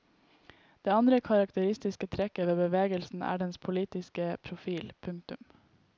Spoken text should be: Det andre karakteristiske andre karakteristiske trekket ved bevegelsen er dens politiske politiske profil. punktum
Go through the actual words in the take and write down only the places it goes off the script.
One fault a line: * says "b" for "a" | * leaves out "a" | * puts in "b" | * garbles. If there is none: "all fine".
* leaves out "andre karakteristiske"
* leaves out "politiske"